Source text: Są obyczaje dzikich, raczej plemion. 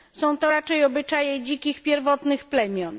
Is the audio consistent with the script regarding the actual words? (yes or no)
no